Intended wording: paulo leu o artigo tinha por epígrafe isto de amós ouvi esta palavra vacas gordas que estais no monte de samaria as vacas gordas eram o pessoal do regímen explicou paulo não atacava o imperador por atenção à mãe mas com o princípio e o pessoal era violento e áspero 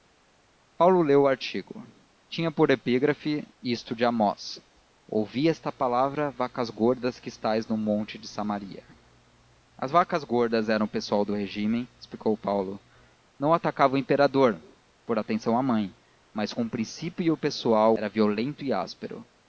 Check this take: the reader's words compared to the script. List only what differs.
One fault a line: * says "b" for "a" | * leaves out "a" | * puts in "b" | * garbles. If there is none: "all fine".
all fine